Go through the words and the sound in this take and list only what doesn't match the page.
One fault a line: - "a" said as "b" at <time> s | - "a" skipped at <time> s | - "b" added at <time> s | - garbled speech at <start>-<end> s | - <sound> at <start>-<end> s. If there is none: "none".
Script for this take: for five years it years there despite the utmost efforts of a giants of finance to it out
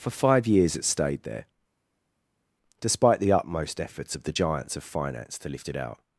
- "years" said as "stayed" at 0.8 s
- "a" said as "the" at 4.2 s
- "lift" added at 5.5 s